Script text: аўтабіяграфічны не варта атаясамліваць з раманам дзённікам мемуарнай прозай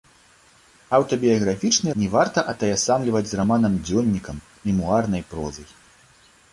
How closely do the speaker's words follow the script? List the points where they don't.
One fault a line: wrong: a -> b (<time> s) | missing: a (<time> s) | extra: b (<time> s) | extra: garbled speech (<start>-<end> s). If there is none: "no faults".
no faults